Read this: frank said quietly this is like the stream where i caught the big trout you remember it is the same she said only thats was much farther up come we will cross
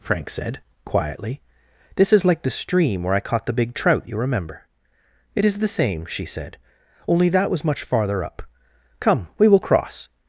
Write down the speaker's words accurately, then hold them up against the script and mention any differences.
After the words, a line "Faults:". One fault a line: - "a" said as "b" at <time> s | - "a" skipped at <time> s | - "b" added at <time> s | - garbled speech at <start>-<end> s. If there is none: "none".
frank said quietly this is like the stream where i caught the big trout you remember it is the same she said only that was much farther up come we will cross
Faults:
- "thats" said as "that" at 7.3 s